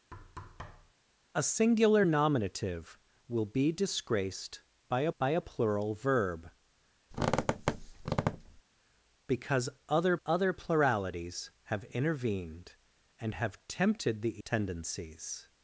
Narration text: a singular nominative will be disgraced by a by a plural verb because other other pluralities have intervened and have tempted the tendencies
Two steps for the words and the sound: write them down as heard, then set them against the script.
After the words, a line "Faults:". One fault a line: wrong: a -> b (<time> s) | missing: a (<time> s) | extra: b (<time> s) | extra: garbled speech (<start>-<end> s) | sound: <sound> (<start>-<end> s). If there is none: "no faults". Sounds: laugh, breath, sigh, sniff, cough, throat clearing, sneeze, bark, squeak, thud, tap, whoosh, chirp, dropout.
a singular nominative will be disgraced by a by a plural verb because other other pluralities have intervened and have tempted the tendencies
Faults:
sound: thud (0.1-0.9 s)
sound: squeak (7.1-8.6 s)